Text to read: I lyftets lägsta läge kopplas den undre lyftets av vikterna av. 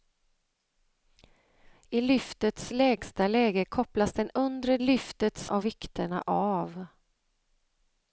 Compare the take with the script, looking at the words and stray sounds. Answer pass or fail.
pass